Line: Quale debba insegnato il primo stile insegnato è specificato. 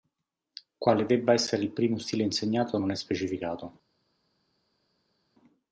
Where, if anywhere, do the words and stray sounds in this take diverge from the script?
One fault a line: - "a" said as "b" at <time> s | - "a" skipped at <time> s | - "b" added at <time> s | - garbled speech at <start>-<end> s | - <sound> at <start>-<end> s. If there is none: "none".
- "insegnato" said as "essere" at 1.3 s
- "non" added at 2.8 s